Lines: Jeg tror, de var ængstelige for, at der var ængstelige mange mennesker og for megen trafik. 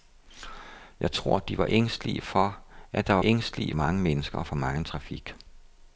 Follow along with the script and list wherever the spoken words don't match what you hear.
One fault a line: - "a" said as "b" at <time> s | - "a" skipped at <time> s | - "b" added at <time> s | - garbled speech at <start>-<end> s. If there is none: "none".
none